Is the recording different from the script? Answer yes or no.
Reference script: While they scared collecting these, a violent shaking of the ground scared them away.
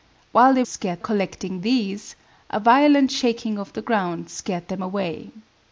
no